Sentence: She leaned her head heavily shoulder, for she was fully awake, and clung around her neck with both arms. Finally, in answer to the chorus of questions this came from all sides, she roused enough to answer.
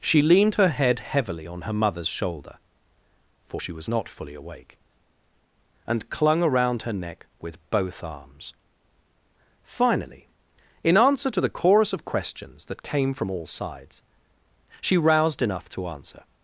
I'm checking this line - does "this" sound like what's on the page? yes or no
no